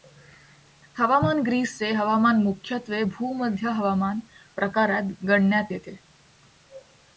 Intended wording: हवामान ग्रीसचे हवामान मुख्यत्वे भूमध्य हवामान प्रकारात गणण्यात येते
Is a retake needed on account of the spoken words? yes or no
no